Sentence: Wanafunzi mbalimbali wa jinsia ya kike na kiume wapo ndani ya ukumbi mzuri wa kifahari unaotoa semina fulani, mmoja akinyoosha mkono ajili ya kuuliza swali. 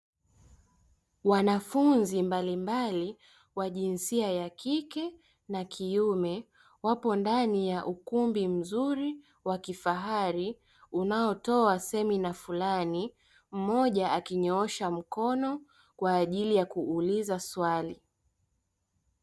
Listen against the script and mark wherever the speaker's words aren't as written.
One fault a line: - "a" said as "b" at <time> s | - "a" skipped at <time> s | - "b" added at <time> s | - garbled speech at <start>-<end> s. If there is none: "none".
- "kwa" added at 15.9 s